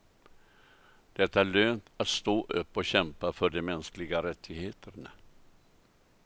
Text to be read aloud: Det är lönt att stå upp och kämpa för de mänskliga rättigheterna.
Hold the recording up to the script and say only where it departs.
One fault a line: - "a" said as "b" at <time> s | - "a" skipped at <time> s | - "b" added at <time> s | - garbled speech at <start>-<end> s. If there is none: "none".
none